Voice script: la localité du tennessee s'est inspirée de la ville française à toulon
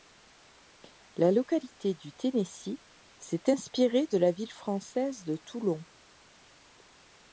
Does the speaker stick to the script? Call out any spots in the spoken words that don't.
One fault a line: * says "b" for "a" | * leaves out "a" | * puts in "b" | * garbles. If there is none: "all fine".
* says "de" for "à"